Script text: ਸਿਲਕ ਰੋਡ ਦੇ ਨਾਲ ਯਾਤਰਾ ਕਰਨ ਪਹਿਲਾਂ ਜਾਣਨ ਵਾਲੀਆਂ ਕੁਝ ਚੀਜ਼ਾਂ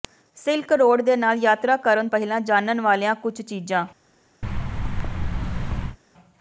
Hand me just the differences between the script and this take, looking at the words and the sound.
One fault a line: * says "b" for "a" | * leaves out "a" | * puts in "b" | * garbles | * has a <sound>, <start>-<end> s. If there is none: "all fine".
* has a thud, 4.4-6.0 s